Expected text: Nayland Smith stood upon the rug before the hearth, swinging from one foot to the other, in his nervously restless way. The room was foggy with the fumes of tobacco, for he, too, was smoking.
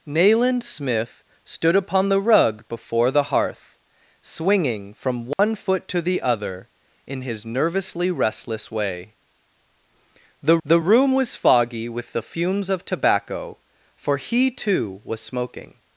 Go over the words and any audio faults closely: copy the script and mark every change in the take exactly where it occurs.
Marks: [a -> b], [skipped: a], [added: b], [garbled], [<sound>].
Nayland Smith stood upon the rug before the hearth, swinging from one [dropout] foot to the other, in his nervously restless way. The [added: the] room was foggy with the fumes of tobacco, for he, too, was smoking.